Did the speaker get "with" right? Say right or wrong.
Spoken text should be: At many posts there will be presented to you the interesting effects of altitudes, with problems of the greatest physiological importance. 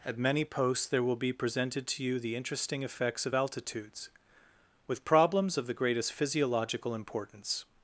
right